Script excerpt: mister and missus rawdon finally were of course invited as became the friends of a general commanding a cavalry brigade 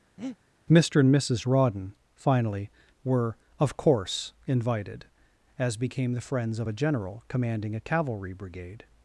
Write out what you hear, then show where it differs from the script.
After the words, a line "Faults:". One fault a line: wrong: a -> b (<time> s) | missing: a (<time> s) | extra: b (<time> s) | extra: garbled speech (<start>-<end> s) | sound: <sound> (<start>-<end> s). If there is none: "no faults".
mister and missus rawdon finally were of course invited as became the friends of a general commanding a cavalry brigade
Faults:
sound: breath (0.2-0.4 s)